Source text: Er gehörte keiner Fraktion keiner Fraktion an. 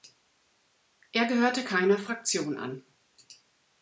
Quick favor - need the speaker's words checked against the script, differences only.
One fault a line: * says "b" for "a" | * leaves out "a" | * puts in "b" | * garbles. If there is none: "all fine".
* leaves out "keiner Fraktion"